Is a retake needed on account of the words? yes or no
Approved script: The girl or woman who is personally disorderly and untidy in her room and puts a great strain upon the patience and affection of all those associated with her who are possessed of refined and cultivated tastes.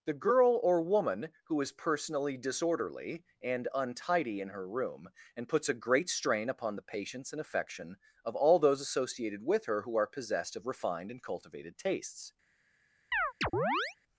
no